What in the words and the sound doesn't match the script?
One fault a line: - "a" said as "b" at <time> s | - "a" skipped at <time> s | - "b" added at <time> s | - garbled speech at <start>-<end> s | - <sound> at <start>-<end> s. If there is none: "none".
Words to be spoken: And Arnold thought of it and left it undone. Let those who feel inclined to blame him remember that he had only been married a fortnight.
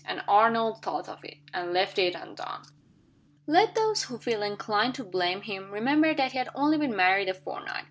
none